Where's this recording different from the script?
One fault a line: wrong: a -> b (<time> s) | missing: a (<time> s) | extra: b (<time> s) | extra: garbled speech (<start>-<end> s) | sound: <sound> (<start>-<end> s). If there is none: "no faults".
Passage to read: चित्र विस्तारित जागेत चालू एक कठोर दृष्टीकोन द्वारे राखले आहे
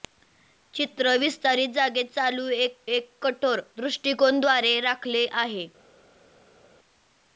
extra: एक (2.9 s)